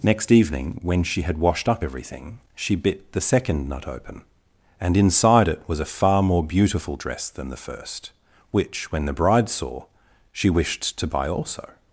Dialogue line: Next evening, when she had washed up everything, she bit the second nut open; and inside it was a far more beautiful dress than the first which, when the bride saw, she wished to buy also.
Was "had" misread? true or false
false